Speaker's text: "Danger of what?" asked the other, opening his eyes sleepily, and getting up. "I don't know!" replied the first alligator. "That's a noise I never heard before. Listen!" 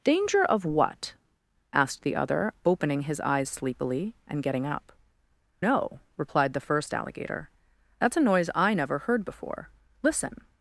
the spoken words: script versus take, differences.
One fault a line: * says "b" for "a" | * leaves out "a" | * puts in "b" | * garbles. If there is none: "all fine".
* leaves out "I don't"